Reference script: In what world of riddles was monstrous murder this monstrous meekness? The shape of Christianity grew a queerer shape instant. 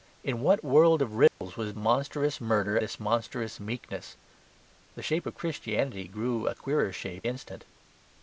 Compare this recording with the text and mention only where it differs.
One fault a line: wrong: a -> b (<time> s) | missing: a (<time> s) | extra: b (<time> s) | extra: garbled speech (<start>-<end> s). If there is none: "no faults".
no faults